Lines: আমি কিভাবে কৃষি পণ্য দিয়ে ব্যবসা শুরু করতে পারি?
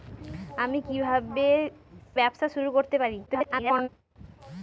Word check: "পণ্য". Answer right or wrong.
wrong